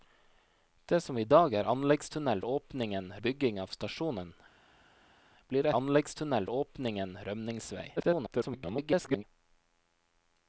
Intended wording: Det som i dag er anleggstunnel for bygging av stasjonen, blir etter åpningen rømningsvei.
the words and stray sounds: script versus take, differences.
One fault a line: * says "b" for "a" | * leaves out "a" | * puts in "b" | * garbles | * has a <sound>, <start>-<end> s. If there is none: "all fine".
* says "åpningen" for "for"
* says "anleggstunnel" for "etter"
* garbles